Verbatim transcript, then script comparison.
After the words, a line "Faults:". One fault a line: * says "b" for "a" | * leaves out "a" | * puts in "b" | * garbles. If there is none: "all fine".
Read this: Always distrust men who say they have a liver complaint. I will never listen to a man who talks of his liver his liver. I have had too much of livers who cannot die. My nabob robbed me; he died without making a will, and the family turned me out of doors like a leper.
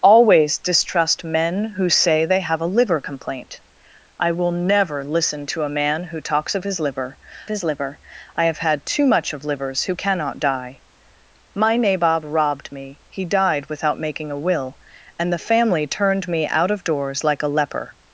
Always distrust men who say they have a liver complaint. I will never listen to a man who talks of his liver his liver. I have had too much of livers who cannot die. My nabob robbed me; he died without making a will, and the family turned me out of doors like a leper.
Faults:
all fine